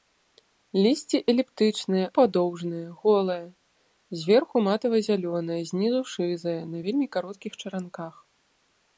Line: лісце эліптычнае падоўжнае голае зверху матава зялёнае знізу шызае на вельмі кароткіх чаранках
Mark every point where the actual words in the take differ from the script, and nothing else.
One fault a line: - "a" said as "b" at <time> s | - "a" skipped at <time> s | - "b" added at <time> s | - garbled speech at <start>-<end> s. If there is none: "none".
none